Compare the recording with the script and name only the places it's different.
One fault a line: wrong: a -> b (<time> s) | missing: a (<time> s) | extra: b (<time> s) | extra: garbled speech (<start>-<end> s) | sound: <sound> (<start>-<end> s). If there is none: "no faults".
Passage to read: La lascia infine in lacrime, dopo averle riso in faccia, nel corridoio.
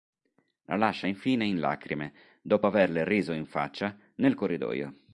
no faults